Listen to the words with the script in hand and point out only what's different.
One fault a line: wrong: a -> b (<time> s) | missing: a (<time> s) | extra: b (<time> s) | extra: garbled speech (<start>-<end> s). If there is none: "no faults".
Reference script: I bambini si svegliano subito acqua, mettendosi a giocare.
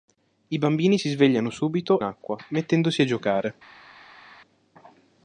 no faults